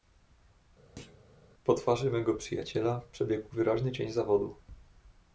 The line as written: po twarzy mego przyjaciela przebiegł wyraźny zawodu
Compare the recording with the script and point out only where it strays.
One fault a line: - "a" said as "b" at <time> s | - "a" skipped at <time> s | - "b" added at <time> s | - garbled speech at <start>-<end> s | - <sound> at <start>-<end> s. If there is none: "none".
- thud at 1.0-1.2 s
- "cień" added at 3.9 s